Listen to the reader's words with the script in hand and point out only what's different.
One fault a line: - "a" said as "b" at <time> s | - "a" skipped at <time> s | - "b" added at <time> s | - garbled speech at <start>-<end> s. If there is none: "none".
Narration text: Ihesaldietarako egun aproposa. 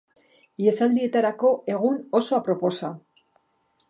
- "oso" added at 2.2 s